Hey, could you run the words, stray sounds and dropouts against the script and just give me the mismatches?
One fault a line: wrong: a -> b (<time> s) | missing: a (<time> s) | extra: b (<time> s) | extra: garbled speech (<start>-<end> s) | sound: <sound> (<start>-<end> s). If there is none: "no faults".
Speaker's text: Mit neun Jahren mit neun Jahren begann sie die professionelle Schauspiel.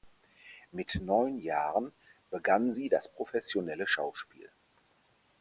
missing: mit neun Jahren (1.9 s)
wrong: die -> das (2.9 s)